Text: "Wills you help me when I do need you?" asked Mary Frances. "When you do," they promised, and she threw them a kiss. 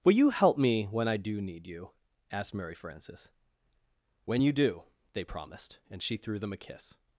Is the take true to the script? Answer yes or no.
no